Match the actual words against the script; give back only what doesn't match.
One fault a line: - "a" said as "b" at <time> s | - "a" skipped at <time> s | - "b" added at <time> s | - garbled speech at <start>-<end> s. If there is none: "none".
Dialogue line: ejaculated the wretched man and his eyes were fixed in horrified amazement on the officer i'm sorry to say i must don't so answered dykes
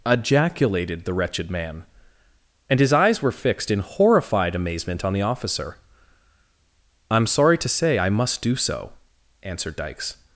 - "don't" said as "do" at 8.4 s